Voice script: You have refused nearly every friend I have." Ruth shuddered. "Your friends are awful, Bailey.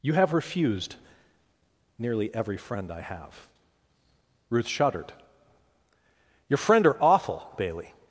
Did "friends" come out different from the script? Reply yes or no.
yes